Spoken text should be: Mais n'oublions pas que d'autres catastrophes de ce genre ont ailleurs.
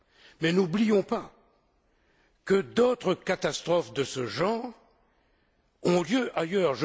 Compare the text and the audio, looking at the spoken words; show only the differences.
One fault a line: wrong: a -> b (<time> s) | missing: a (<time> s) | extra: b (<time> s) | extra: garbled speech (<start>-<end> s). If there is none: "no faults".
extra: lieu (6.0 s)